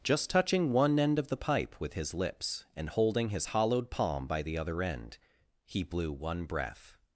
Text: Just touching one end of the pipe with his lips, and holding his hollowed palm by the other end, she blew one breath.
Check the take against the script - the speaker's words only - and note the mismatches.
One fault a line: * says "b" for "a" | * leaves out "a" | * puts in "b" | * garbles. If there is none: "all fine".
* says "he" for "she"